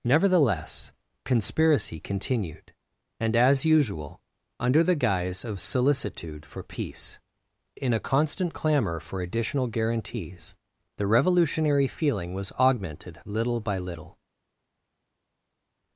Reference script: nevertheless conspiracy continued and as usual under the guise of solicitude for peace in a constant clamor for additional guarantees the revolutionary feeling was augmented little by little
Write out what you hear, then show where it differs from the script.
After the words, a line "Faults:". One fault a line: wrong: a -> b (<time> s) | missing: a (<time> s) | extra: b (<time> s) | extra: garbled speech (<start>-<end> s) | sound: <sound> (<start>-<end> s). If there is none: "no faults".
nevertheless conspiracy continued and as usual under the guise of solicitude for peace in a constant clamor for additional guarantees the revolutionary feeling was augmented little by little
Faults:
no faults